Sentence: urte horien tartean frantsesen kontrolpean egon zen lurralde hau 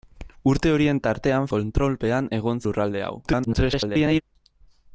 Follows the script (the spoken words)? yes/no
no